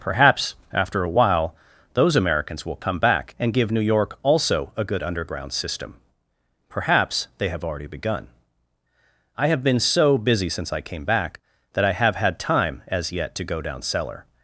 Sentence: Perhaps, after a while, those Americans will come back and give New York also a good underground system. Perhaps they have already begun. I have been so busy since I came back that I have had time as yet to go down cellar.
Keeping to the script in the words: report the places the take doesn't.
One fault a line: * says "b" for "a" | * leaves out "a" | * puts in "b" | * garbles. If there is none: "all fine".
all fine